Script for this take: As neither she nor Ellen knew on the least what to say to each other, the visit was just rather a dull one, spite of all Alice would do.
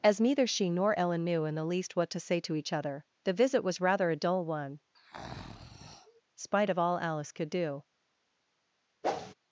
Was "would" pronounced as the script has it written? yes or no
no